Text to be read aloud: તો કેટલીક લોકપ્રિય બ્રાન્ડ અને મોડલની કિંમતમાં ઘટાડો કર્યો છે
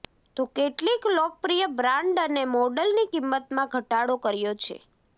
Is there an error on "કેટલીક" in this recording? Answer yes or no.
no